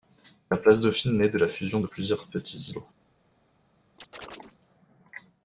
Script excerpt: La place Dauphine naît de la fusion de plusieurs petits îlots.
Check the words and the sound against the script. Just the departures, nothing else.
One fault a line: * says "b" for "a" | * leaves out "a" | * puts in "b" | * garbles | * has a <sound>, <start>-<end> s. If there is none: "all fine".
* has a chirp, 4.0-4.6 s